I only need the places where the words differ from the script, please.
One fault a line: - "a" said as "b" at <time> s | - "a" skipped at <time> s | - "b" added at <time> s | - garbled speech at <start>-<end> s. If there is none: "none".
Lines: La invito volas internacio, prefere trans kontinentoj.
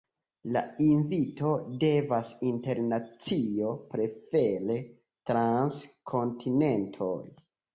- "volas" said as "devas" at 1.8 s